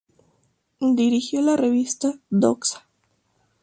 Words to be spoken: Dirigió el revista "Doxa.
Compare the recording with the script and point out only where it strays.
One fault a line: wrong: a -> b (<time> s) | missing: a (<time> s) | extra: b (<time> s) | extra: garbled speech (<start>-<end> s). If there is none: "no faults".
wrong: el -> la (1.4 s)